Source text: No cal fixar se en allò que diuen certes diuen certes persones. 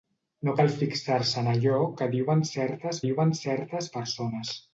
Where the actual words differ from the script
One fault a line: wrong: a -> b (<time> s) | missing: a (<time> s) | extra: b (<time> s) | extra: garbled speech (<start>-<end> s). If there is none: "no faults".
no faults